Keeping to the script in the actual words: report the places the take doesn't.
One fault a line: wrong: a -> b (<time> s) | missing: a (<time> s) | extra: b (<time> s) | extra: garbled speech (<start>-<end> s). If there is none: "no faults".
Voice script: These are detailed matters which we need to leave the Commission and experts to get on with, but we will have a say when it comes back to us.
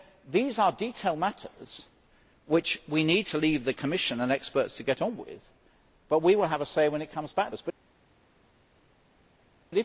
missing: to (7.5 s)